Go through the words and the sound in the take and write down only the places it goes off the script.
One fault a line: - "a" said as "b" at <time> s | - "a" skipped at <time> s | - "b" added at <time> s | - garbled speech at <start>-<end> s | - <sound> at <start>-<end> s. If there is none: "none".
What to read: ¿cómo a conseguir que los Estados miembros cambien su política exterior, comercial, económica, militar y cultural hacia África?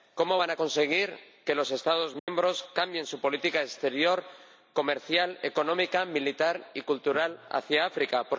- "van" added at 0.4 s
- dropout at 2.2-2.3 s